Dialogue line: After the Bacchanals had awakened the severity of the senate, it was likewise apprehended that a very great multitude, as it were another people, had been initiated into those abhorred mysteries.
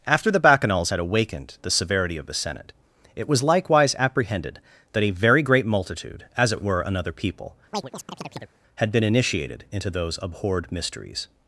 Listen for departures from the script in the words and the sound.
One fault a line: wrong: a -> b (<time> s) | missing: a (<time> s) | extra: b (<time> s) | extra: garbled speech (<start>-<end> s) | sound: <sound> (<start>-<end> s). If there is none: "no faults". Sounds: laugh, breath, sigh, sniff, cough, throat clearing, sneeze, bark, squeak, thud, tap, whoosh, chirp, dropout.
sound: chirp (7.7-8.6 s)